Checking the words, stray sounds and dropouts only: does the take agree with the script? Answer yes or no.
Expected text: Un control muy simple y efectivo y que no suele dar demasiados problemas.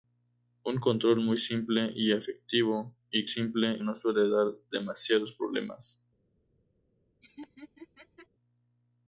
no